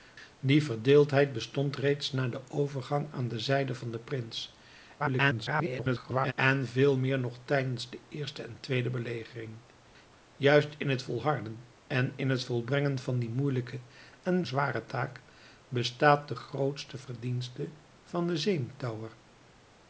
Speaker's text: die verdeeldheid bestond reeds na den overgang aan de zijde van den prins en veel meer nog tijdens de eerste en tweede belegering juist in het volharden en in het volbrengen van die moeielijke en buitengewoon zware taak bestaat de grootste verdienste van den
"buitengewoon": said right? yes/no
no